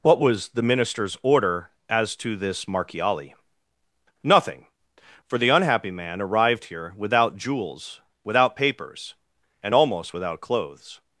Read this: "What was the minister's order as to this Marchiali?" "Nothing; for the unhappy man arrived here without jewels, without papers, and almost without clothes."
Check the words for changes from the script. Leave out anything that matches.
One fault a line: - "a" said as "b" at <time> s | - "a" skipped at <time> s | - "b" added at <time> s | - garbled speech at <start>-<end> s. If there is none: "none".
none